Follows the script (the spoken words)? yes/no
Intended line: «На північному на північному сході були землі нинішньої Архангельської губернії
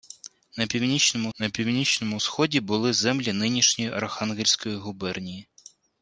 yes